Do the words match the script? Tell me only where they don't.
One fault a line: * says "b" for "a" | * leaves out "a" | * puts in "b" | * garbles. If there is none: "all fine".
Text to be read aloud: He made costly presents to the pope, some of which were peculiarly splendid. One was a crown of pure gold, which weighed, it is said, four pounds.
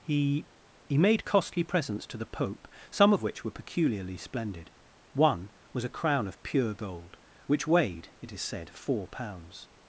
* puts in "he"